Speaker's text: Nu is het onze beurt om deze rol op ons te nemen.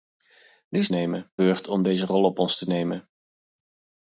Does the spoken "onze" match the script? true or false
false